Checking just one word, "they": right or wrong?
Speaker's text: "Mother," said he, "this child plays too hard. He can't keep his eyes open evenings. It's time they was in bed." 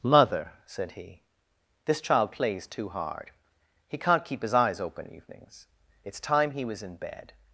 wrong